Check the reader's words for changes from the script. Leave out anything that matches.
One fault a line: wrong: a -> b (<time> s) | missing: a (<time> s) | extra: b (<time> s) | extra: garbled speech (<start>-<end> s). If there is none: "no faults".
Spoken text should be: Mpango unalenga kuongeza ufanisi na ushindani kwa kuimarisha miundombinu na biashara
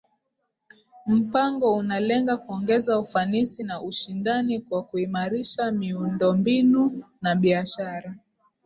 no faults